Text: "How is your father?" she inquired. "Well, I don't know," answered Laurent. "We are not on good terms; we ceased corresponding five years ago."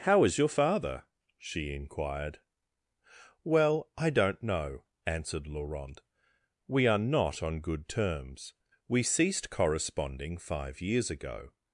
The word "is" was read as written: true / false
true